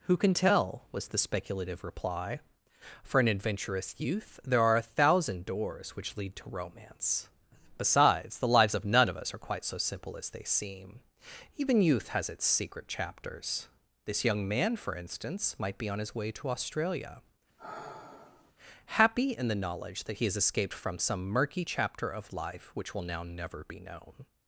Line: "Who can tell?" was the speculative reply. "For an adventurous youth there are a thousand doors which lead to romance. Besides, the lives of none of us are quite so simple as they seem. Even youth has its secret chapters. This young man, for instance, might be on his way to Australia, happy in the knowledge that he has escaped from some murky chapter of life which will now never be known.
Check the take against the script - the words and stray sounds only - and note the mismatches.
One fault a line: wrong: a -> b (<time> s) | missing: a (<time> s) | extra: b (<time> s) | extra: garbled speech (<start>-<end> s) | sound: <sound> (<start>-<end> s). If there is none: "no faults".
sound: sigh (17.6-18.5 s)